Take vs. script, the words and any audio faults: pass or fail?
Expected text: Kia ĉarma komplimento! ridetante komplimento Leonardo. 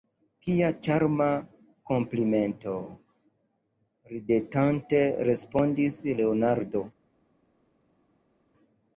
fail